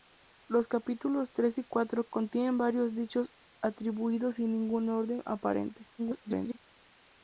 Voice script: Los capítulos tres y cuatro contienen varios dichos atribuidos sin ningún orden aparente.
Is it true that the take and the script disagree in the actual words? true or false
true